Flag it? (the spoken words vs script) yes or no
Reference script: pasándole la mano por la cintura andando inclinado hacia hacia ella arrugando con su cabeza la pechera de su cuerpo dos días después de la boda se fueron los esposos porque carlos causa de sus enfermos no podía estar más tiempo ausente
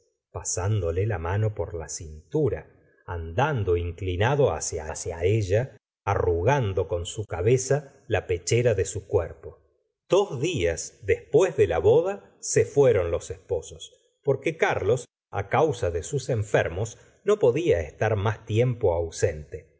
no